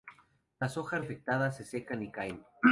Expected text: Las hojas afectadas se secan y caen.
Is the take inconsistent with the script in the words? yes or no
no